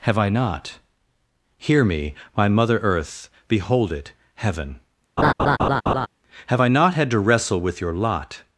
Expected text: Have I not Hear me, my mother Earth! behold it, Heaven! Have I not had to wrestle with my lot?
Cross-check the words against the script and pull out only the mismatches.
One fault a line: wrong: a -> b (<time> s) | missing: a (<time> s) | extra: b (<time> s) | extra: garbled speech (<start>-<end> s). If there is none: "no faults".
wrong: my -> your (7.8 s)